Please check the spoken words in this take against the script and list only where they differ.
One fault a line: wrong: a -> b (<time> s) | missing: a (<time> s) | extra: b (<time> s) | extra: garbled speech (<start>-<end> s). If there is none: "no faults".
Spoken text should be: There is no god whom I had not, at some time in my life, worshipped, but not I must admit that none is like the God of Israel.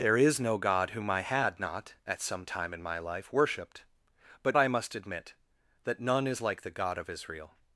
missing: not (4.6 s)